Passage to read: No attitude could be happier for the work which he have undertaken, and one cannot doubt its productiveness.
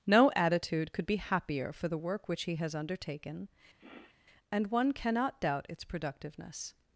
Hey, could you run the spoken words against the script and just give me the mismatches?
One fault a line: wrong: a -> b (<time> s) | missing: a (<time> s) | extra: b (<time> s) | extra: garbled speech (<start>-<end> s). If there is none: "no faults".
wrong: have -> has (2.5 s)